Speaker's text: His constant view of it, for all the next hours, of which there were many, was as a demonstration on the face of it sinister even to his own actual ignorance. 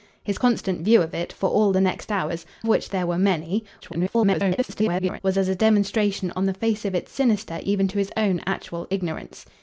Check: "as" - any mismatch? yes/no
no